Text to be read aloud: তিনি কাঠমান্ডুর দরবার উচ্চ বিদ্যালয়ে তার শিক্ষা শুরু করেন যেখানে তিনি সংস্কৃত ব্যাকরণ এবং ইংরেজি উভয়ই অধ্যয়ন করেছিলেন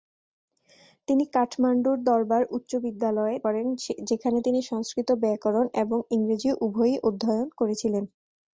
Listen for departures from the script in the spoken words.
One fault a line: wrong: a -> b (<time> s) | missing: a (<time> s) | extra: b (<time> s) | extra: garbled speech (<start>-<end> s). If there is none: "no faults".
missing: তার শিক্ষা শুরু (3.4 s)